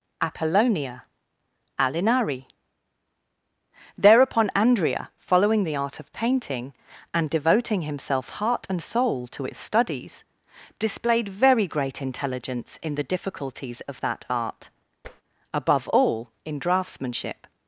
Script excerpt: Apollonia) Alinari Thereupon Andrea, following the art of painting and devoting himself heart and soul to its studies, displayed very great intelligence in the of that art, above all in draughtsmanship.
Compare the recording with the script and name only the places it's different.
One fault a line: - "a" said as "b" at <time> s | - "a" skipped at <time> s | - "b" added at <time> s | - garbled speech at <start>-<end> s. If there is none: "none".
- "difficulties" added at 13.0 s